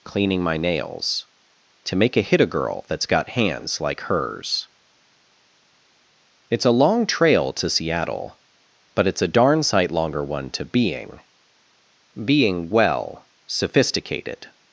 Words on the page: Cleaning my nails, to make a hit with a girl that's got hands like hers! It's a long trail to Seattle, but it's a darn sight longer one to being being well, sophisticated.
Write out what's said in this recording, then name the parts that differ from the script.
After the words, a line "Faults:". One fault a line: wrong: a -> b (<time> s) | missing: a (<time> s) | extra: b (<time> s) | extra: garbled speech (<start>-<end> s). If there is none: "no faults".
Cleaning my nails, to make a hit a girl that's got hands like hers! It's a long trail to Seattle, but it's a darn sight longer one to being being well, sophisticated.
Faults:
missing: with (2.4 s)